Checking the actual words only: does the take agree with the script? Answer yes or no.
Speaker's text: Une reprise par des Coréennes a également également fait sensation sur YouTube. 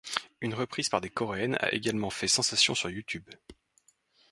no